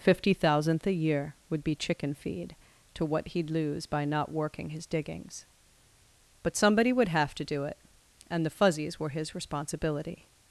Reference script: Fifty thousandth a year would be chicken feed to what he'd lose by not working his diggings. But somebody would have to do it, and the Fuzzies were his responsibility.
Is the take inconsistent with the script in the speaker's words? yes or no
no